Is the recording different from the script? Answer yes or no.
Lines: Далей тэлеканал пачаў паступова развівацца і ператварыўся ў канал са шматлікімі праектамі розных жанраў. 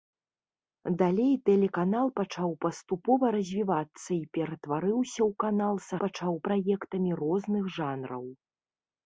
yes